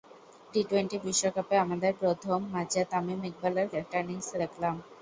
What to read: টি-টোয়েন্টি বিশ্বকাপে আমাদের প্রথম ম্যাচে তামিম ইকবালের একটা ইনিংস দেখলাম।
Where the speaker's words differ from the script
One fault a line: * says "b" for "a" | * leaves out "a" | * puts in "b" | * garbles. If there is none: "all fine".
all fine